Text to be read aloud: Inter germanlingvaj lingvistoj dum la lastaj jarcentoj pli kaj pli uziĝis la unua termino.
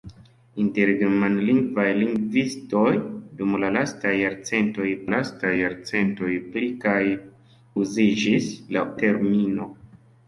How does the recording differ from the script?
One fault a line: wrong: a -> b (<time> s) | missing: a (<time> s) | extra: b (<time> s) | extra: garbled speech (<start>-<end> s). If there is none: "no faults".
extra: lastaj jarcentoj (5.1 s)
missing: pli (7.0 s)
missing: unua (8.8 s)